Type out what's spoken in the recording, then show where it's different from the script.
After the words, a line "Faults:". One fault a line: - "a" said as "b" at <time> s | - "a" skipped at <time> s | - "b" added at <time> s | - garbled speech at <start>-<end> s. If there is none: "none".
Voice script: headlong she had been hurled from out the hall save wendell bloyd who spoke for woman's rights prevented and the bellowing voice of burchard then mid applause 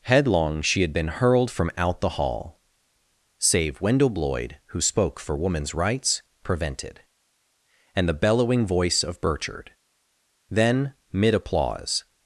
headlong she had been hurled from out the hall save wendell bloyd who spoke for woman's rights prevented and the bellowing voice of burchard then mid applause
Faults:
none